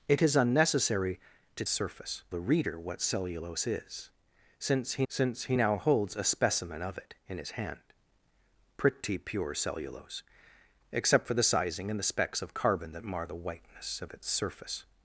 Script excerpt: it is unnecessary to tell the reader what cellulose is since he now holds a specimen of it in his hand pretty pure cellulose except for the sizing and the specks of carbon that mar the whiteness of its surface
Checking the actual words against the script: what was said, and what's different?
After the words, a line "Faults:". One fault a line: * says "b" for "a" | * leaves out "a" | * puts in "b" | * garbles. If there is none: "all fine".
it is unnecessary to surface the reader what cellulose is since he since he now holds a specimen of it in his hand pretty pure cellulose except for the sizing and the specks of carbon that mar the whiteness of its surface
Faults:
* says "surface" for "tell"
* puts in "since he"